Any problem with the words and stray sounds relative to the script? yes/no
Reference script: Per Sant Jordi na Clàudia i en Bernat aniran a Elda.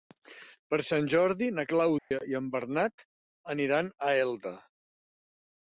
yes